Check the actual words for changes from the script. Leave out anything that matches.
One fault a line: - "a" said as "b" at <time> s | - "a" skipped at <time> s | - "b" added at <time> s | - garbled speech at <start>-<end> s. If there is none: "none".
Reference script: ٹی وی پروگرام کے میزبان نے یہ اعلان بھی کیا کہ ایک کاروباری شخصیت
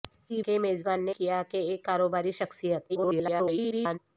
- "وی پروگرام" skipped at 0.4 s
- "یہ اعلان بھی" skipped at 1.2 s
- garbled speech at 2.9-4.0 s